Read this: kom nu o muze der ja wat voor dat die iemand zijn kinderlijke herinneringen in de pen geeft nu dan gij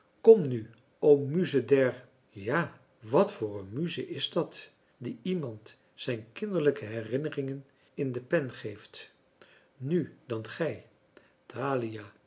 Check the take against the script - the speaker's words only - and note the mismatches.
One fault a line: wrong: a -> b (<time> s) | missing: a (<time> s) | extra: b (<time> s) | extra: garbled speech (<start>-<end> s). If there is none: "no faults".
extra: een muze is (3.6 s)